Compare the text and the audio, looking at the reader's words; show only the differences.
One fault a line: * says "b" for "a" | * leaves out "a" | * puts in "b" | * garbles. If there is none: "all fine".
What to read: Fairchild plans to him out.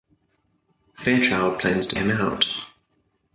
all fine